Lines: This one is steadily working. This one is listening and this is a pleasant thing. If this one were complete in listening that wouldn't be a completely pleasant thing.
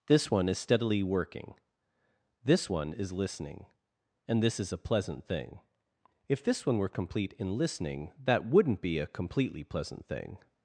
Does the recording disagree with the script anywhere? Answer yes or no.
no